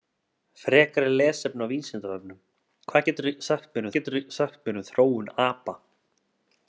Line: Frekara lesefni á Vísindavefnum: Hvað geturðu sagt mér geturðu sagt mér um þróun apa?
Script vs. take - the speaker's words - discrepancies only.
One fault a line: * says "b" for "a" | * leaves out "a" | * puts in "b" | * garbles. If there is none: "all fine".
all fine